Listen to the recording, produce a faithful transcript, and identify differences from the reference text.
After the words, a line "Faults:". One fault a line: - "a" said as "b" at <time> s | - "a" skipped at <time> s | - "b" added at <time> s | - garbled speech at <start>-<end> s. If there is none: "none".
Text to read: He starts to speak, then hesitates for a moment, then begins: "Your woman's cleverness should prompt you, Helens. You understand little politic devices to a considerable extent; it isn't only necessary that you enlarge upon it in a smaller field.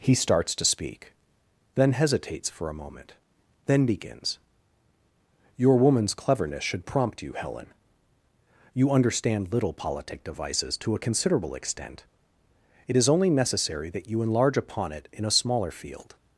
He starts to speak, then hesitates for a moment, then begins: "Your woman's cleverness should prompt you, Helen. You understand little politic devices to a considerable extent; it is only necessary that you enlarge upon it in a smaller field.
Faults:
- "Helens" said as "Helen" at 7.3 s
- "isn't" said as "is" at 12.9 s